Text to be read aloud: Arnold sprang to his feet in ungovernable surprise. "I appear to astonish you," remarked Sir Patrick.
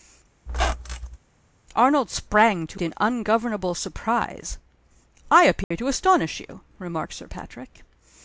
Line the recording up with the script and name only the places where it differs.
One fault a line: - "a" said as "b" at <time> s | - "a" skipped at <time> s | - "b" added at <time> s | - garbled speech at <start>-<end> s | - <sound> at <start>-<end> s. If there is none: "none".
- squeak at 0.5-1.2 s
- "his feet" skipped at 2.8 s
- dropout at 5.6-5.7 s